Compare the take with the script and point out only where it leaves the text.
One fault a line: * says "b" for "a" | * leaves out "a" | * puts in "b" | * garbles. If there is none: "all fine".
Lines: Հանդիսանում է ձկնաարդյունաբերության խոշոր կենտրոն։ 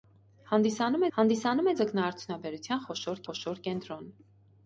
* puts in "հանդիսանում"
* puts in "խոշոր"